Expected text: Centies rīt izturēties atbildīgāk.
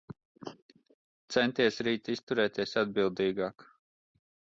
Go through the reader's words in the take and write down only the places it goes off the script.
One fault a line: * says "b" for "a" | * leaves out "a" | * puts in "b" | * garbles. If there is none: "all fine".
all fine